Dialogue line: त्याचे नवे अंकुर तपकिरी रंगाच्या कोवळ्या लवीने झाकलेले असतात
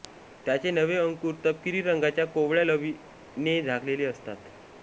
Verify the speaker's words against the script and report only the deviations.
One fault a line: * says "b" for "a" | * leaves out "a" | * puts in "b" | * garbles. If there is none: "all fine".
all fine